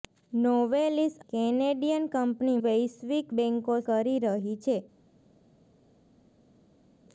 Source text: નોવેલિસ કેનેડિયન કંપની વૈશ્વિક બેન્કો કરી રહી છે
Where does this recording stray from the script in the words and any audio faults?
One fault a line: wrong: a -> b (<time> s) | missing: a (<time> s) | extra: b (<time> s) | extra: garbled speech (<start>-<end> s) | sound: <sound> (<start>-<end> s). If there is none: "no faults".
no faults